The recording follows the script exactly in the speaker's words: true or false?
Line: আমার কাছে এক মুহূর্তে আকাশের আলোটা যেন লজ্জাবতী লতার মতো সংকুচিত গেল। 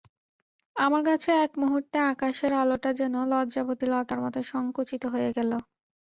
false